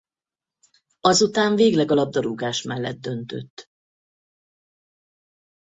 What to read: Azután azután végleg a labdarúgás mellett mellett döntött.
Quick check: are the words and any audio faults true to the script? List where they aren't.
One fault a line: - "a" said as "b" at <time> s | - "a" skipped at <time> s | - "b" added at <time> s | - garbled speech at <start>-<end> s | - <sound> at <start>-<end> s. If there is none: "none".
- "azután" skipped at 1.6 s
- "mellett" skipped at 3.0 s